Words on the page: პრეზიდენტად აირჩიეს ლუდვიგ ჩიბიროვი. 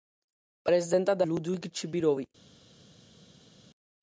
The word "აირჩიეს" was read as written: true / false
false